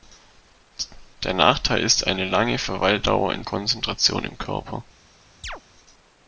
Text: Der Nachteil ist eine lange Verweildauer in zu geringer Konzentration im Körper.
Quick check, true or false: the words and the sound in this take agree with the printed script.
false